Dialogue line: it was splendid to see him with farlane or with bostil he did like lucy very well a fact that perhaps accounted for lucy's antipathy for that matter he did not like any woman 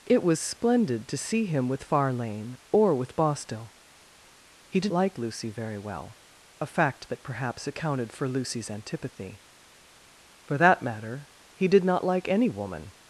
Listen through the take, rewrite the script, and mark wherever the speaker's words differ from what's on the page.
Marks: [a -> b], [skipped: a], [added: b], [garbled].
it was splendid to see him with farlane or with bostil he did like lucy very well a fact that perhaps accounted for lucy's antipathy for that matter he did not like any woman